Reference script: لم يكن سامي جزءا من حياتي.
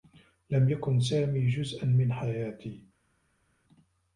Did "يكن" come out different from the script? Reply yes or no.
no